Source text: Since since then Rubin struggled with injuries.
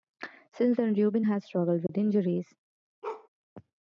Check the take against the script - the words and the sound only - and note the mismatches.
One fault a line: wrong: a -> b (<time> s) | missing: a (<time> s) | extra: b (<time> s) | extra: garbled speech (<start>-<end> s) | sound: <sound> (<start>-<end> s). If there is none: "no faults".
missing: since (0.8 s)
extra: has (1.2 s)
sound: dropout (1.9-1.9 s)
sound: bark (3.0-3.3 s)